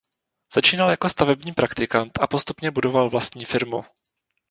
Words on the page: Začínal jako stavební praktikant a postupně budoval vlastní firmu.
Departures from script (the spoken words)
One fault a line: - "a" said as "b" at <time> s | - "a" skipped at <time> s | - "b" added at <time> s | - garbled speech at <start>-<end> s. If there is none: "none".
none